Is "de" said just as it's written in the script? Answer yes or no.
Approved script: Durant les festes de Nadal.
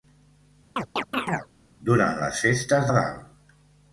no